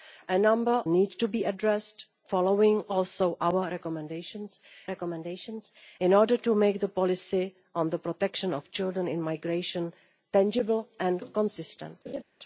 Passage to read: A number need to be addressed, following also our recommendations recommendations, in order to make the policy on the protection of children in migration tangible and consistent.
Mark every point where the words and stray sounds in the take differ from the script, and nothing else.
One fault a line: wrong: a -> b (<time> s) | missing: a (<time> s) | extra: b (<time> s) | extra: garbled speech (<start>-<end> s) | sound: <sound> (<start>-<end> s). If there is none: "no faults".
sound: laugh (12.1-12.2 s)